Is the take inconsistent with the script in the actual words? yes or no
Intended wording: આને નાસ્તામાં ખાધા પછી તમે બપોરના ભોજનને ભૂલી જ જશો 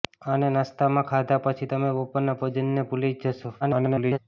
yes